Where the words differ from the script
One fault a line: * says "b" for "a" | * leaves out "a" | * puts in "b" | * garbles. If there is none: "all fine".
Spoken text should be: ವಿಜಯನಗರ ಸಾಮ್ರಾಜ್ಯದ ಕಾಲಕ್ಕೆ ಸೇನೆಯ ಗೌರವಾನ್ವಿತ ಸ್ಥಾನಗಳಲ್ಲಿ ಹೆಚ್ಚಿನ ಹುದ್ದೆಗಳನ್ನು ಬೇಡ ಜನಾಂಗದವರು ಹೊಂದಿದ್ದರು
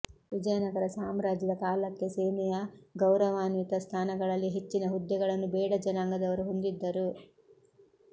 all fine